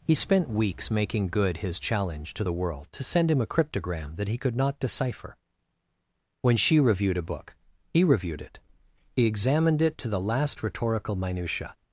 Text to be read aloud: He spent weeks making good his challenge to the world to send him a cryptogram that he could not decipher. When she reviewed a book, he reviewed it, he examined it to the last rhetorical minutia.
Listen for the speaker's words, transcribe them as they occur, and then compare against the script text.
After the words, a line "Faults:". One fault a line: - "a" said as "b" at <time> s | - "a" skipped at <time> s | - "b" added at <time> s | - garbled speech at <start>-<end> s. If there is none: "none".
He spent weeks making good his challenge to the world to send him a cryptogram that he could not decipher. When she reviewed a book, he reviewed it, he examined it to the last rhetorical minutia.
Faults:
none